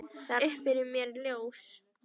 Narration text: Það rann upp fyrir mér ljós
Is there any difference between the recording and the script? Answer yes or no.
yes